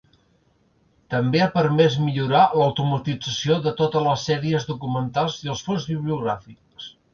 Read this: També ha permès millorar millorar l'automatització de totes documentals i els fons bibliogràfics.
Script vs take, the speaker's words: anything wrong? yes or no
yes